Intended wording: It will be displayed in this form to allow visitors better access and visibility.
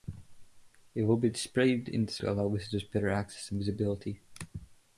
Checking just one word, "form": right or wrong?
wrong